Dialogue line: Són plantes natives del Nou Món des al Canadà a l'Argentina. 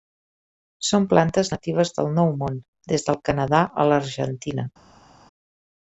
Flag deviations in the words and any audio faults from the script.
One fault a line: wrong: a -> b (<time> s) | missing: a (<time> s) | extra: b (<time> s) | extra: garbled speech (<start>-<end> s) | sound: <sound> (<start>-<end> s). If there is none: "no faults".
wrong: al -> del (3.1 s)